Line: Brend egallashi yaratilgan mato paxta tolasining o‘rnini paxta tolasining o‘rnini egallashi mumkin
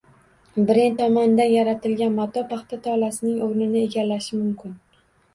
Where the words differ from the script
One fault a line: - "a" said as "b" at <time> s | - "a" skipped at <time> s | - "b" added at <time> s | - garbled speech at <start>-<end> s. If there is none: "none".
- "egallashi" said as "tomonidan" at 1.0 s
- "paxta tolasining o‘rnini" skipped at 3.8 s